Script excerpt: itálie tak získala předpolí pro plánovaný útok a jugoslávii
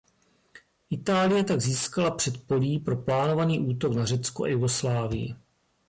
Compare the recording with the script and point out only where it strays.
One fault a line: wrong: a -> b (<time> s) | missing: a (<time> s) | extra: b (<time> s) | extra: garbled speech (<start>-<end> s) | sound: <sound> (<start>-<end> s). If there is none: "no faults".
extra: na řecko (4.0 s)